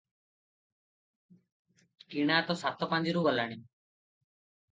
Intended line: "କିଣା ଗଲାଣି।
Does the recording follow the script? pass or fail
fail